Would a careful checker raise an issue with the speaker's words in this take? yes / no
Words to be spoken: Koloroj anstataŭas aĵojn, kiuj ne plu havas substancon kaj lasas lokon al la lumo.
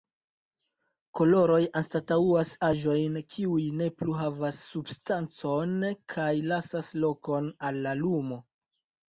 no